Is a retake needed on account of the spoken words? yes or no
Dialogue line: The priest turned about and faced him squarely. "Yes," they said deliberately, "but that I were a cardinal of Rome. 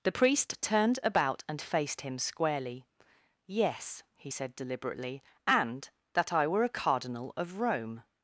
yes